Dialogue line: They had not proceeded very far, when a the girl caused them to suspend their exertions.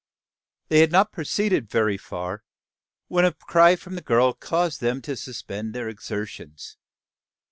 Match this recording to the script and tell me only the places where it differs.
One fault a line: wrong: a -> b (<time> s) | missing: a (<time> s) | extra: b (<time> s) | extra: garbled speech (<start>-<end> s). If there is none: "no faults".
extra: cry from (3.3 s)